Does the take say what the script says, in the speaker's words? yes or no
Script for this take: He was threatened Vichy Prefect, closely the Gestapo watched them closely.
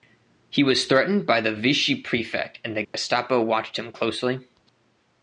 no